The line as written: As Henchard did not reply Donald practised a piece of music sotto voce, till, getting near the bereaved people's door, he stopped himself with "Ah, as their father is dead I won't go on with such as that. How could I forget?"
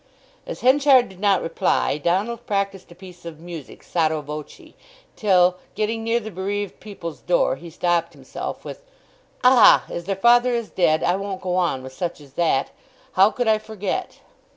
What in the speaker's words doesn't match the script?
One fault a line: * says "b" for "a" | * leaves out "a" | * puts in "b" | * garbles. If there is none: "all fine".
all fine